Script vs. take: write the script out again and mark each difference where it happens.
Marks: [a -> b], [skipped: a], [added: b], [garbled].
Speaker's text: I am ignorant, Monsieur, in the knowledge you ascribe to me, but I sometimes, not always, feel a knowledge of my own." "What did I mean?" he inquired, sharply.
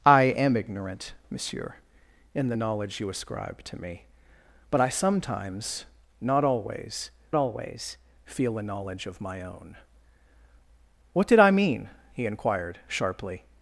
I am ignorant, Monsieur, in the knowledge you ascribe to me, but I sometimes, not always, [added: always] feel a knowledge of my own." "What did I mean?" he inquired, sharply.